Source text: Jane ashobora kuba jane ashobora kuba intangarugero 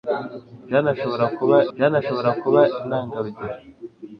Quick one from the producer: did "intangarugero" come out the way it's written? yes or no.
yes